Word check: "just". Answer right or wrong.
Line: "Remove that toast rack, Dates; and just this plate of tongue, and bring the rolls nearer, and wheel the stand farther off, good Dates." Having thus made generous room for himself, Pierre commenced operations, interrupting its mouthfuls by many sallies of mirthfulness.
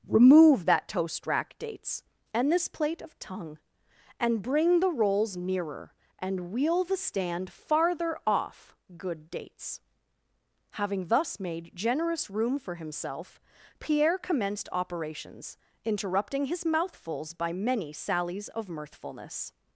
wrong